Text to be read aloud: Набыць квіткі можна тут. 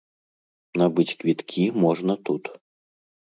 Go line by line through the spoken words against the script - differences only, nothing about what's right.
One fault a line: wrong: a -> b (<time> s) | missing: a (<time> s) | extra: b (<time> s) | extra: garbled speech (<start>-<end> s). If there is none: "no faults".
no faults